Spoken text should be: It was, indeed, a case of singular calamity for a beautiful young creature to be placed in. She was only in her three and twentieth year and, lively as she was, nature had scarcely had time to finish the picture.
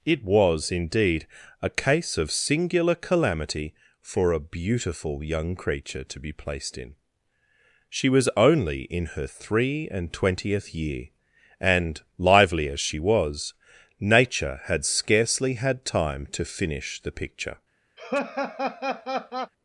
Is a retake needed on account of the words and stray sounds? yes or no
yes